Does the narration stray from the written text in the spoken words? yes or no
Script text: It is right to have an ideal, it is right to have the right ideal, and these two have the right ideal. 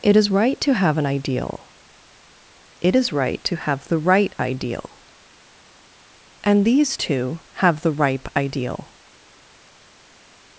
yes